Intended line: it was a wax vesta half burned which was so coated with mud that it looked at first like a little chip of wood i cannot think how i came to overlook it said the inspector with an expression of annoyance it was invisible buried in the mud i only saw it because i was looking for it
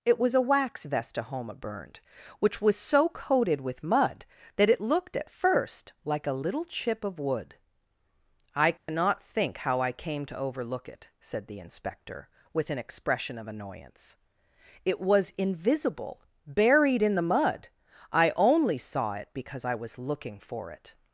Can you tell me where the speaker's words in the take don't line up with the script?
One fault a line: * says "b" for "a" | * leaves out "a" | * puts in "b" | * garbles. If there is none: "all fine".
* says "homa" for "half"